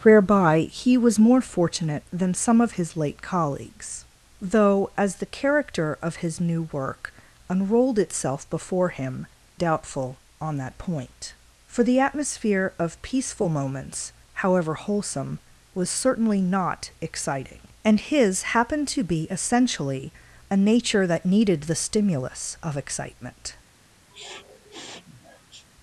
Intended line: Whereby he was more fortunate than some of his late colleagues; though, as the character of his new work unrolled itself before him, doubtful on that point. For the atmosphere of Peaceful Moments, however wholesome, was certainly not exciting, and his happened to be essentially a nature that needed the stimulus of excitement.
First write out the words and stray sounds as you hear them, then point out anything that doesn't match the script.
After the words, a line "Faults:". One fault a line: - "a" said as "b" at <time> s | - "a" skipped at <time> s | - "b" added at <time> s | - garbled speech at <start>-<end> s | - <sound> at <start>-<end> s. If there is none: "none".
Whereby he was more fortunate than some of his late colleagues; though, as the character of his new work unrolled itself before him, doubtful on that point. For the atmosphere of Peaceful Moments, however wholesome, was certainly not exciting, and his happened to be essentially a nature that needed the stimulus of excitement.
Faults:
- sniff at 24.1-25.7 s